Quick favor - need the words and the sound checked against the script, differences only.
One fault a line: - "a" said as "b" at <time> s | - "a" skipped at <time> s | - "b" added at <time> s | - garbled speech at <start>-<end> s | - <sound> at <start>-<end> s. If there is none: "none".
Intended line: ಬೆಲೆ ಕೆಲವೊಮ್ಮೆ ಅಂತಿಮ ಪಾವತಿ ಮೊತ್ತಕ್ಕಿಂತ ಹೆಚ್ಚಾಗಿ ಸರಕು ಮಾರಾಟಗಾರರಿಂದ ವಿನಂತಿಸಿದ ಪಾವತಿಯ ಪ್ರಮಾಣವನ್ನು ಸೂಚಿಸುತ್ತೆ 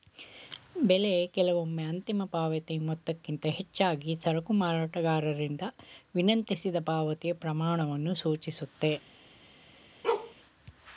- bark at 10.0-10.3 s